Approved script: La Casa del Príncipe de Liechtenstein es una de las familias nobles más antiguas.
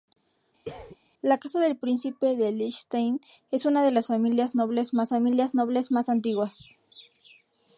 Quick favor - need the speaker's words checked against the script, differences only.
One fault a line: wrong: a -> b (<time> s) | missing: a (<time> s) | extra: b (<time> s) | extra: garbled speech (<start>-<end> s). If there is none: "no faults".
extra: familias nobles más (5.1 s)